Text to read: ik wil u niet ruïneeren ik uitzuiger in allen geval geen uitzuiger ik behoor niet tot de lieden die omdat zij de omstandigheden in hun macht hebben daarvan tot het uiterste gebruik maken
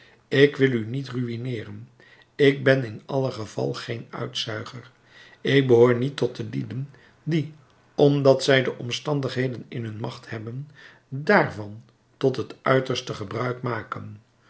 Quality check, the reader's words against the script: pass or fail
fail